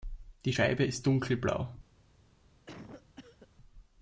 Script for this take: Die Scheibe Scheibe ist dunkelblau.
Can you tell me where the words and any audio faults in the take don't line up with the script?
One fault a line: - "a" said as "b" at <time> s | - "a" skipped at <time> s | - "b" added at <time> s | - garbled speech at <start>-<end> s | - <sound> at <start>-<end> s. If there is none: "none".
- "Scheibe" skipped at 0.8 s
- cough at 2.7-3.5 s